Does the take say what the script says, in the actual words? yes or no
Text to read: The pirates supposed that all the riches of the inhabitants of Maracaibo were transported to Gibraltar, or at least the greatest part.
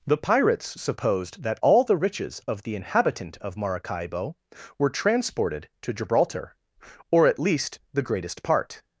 no